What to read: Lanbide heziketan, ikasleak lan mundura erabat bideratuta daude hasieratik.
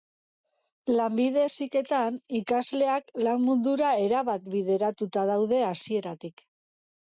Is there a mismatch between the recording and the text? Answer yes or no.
no